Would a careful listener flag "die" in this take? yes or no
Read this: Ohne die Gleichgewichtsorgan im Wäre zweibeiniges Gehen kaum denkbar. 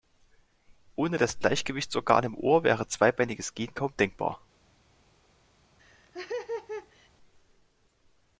yes